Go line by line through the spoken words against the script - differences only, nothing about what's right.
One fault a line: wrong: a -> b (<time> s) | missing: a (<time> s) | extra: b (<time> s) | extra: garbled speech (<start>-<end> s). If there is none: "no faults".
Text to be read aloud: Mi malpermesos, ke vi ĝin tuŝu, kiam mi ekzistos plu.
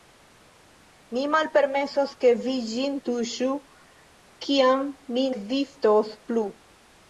no faults